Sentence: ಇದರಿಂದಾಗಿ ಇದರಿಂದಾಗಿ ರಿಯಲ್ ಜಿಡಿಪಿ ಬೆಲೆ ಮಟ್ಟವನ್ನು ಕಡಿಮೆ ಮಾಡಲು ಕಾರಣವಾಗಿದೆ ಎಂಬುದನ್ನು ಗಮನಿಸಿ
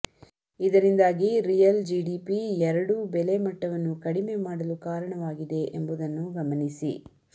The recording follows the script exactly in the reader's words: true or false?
false